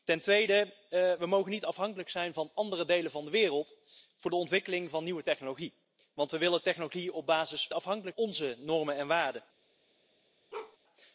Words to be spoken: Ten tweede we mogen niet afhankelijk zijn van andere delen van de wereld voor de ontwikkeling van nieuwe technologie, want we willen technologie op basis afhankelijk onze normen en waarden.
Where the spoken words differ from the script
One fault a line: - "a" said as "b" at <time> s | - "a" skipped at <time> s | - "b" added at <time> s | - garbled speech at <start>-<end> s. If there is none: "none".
none